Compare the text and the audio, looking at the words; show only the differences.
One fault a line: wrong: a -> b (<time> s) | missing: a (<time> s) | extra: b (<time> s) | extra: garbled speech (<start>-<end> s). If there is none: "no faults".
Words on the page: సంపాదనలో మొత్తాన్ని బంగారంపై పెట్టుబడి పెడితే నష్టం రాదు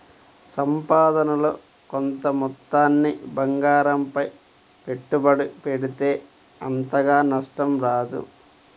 extra: కొంత (1.9 s)
extra: అంతగా (6.6 s)